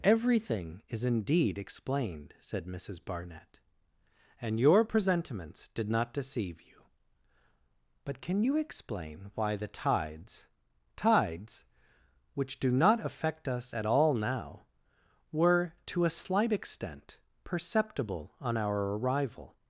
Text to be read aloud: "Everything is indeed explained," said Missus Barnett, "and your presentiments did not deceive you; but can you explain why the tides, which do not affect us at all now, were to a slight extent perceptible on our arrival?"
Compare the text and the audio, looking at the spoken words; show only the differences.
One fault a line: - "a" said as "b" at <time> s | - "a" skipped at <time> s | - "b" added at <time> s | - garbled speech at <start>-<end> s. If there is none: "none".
- "tides" added at 11.0 s